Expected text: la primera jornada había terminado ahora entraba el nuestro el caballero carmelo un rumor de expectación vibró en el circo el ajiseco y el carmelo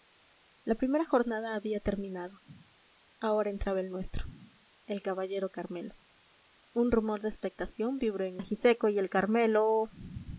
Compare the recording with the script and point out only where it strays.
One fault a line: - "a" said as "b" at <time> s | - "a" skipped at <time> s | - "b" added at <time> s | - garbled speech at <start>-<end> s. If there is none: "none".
- "el circo el" skipped at 8.4 s